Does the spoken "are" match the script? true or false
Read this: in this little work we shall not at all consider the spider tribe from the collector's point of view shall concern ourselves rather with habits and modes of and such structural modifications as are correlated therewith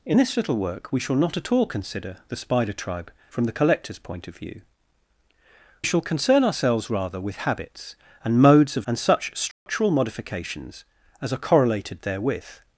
true